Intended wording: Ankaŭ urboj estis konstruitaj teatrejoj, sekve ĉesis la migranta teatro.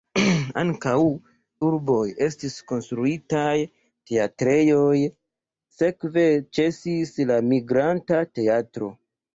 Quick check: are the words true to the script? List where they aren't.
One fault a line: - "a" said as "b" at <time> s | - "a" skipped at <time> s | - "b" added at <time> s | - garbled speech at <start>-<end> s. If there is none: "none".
none